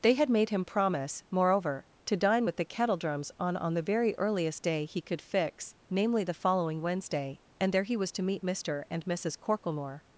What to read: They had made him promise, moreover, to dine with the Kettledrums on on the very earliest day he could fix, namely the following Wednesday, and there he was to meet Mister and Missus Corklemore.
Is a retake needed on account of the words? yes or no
no